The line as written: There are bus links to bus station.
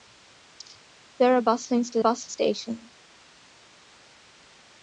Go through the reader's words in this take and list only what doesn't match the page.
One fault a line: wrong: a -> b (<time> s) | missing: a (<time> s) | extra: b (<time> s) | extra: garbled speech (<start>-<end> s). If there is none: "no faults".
no faults